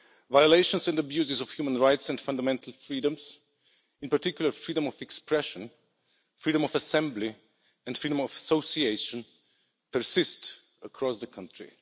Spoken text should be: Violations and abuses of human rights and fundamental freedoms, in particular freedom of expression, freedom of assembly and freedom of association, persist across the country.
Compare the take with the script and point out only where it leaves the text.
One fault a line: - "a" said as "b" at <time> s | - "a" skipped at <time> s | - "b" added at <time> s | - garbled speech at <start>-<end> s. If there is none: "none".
none